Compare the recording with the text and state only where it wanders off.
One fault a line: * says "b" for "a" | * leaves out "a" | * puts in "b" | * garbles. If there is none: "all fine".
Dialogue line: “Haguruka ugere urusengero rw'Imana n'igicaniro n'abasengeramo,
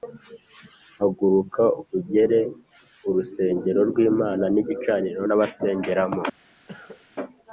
all fine